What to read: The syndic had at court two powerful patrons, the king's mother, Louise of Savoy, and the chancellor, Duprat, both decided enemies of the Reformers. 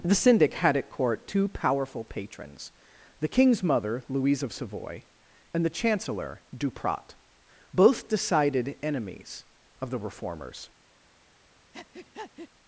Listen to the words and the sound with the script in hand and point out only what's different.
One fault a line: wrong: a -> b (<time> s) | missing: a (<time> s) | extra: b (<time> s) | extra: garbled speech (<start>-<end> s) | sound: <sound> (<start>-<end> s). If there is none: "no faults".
sound: breath (11.7-12.5 s)